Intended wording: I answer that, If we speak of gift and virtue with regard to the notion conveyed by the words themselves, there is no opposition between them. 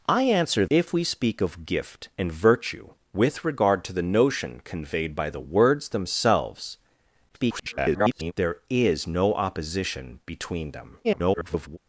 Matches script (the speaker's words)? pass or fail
fail